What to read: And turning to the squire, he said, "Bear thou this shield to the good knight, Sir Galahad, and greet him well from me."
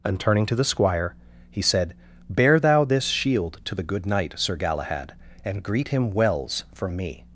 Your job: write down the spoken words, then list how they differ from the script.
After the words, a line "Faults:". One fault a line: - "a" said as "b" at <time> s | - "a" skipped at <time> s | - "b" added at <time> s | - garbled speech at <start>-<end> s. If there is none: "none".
And turning to the squire, he said, "Bear thou this shield to the good knight, Sir Galahad, and greet him wells from me."
Faults:
- "well" said as "wells" at 6.1 s